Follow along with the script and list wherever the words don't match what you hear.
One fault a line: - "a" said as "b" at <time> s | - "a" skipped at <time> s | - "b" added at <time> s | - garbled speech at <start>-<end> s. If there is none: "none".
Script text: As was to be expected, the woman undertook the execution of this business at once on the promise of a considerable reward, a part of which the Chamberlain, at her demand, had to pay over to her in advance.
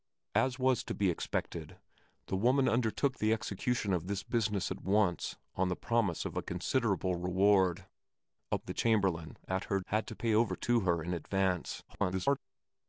- "part of which" skipped at 8.6 s
- "demand" skipped at 9.8 s
- garbled speech at 11.9-12.4 s